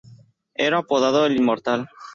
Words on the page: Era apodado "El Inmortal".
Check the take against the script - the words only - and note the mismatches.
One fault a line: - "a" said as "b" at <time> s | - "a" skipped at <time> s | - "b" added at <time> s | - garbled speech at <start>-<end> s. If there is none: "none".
none